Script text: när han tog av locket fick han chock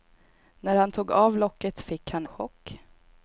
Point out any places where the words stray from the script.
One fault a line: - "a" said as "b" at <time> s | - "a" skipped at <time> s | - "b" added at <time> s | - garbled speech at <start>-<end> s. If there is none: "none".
none